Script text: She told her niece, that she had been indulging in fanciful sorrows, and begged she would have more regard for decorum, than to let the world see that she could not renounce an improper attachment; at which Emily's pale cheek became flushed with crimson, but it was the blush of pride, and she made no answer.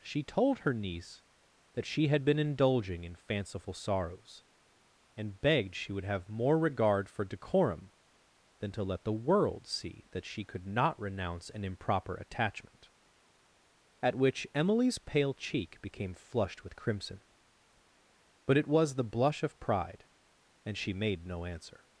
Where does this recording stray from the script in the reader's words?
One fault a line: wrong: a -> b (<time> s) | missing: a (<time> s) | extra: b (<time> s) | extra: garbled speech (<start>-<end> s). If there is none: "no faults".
no faults